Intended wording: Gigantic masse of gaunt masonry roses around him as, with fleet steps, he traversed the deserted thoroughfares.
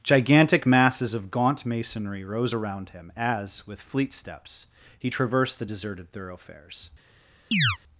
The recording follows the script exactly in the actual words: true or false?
false